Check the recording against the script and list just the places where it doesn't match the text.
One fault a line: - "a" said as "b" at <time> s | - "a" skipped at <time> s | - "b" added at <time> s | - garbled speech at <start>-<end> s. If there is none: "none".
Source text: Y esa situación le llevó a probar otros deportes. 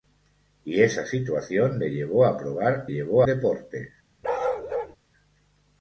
- "otros" said as "llevó" at 2.9 s